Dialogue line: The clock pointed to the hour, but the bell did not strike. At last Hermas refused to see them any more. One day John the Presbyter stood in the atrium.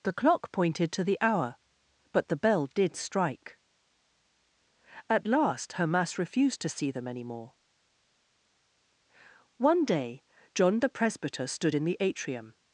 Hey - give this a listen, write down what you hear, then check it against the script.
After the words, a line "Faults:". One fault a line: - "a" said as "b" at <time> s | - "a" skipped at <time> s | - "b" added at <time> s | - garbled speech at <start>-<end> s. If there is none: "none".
The clock pointed to the hour, but the bell did strike. At last Hermas refused to see them any more. One day John the Presbyter stood in the atrium.
Faults:
- "not" skipped at 3.0 s